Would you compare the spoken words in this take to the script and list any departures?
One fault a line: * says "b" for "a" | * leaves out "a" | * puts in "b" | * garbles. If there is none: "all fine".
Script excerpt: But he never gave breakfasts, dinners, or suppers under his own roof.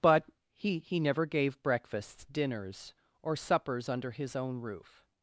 * puts in "he"